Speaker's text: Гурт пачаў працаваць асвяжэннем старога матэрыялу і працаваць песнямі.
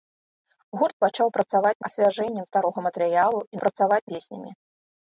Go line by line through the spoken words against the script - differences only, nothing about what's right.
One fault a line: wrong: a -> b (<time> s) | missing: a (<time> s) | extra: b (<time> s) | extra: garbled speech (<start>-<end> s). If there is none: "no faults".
no faults